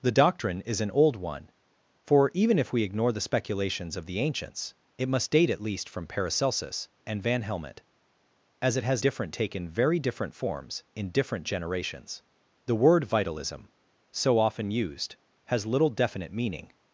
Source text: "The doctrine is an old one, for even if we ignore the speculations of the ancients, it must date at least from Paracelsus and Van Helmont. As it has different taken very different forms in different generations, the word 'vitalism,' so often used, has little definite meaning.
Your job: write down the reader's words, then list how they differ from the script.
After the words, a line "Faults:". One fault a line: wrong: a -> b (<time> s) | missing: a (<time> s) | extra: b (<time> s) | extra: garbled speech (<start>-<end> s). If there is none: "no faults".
"The doctrine is an old one, for even if we ignore the speculations of the ancients, it must date at least from Paracelsus and Van Helmont. As it has different taken very different forms in different generations, the word 'vitalism,' so often used, has little definite meaning.
Faults:
no faults